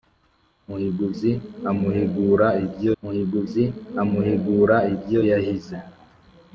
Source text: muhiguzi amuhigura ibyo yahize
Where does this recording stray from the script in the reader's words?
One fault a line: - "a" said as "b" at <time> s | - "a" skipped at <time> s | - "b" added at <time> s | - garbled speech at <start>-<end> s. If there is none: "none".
- "muhiguzi amuhigura ibyo" added at 3.0 s